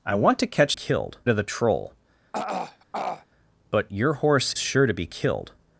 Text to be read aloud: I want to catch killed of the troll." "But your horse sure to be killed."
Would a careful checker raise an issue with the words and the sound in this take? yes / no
yes